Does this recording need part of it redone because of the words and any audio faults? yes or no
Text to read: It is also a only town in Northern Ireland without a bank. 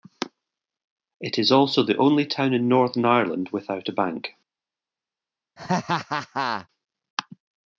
yes